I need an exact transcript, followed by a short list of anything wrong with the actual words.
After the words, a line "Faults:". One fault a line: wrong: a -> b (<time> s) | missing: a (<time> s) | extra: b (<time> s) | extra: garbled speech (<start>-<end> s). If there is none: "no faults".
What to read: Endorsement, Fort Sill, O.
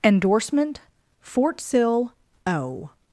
Endorsement, Fort Sill, O.
Faults:
no faults